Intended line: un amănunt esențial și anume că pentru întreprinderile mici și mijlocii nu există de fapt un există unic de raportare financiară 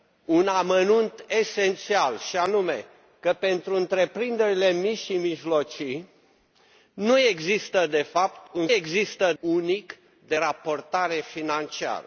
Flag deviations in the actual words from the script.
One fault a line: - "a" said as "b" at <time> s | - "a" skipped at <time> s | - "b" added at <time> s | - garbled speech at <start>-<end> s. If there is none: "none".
none